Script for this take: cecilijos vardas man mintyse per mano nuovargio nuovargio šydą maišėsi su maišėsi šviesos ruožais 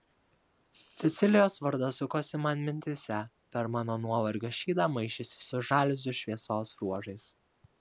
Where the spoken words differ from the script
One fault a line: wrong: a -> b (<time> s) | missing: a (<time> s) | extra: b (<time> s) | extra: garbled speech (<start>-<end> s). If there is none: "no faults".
extra: sukosi (2.0 s)
missing: nuovargio (4.5 s)
wrong: maišėsi -> žaliuzių (5.7 s)